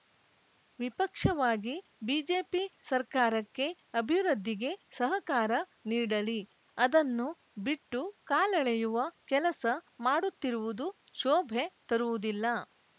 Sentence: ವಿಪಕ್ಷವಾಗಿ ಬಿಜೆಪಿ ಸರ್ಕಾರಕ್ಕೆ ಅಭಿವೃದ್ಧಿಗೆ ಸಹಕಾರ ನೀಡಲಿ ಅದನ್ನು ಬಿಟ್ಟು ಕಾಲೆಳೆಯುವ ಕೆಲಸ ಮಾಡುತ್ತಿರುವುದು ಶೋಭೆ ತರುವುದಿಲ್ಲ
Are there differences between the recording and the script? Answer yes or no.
no